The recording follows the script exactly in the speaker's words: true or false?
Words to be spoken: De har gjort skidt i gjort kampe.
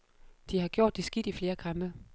false